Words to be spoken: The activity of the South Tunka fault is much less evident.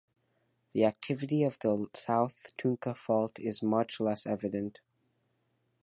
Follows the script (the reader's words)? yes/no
yes